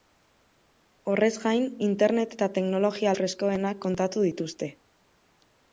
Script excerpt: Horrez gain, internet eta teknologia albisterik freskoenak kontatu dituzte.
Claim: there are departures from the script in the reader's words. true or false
true